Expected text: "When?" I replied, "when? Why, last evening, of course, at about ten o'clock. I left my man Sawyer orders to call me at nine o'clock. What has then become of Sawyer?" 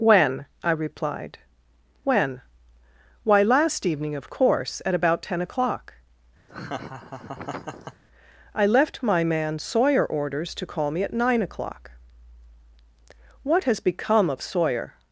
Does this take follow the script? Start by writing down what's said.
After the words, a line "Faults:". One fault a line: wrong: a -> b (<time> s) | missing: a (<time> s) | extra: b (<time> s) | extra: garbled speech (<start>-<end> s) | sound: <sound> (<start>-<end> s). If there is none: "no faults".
"When?" I replied, "when? Why, last evening, of course, at about ten o'clock. I left my man Sawyer orders to call me at nine o'clock. What has become of Sawyer?"
Faults:
sound: laugh (6.5-8.0 s)
missing: then (13.8 s)